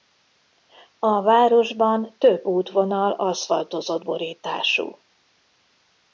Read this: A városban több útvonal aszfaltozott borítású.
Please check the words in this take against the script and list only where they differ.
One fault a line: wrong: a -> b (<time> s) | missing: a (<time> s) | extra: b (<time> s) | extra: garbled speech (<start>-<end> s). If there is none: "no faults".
no faults